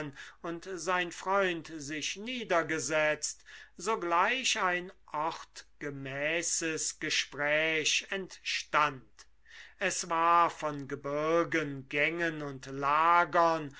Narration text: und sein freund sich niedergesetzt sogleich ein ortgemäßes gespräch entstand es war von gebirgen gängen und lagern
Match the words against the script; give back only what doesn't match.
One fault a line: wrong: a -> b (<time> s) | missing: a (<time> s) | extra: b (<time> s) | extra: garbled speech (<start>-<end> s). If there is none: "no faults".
no faults